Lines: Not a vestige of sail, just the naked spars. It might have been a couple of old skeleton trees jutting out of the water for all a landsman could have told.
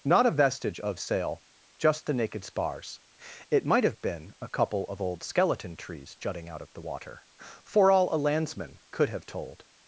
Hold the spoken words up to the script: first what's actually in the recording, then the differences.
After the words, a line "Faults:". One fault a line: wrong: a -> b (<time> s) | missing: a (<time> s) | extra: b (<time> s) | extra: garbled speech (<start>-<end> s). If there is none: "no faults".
Not a vestige of sail, just the naked spars. It might have been a couple of old skeleton trees jutting out of the water for all a landsman could have told.
Faults:
no faults